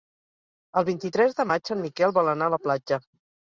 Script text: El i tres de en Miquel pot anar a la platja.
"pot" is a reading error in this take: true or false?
true